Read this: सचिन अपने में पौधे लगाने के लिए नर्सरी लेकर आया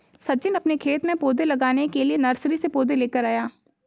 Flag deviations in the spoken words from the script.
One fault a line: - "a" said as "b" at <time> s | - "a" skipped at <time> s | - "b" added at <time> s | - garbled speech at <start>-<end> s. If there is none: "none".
- "खेत" added at 0.8 s
- "से पौधे" added at 2.5 s